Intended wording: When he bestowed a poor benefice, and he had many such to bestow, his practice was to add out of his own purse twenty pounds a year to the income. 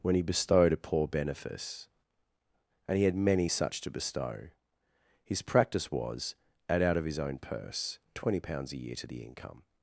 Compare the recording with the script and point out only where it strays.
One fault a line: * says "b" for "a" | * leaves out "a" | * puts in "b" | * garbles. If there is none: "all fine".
* leaves out "to"